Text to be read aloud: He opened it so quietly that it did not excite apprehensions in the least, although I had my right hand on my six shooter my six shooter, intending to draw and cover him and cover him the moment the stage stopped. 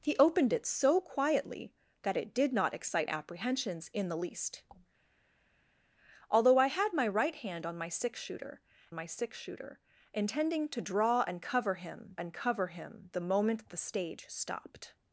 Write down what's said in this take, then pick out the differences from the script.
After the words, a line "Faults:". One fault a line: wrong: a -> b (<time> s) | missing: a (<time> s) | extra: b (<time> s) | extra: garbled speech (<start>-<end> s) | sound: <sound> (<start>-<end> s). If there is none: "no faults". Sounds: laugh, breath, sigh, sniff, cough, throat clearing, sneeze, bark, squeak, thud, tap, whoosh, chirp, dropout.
He opened it so quietly that it did not excite apprehensions in the least, although I had my right hand on my six shooter my six shooter, intending to draw and cover him and cover him the moment the stage stopped.
Faults:
no faults